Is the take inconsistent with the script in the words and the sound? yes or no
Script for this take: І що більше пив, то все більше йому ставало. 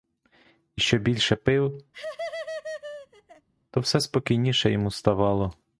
yes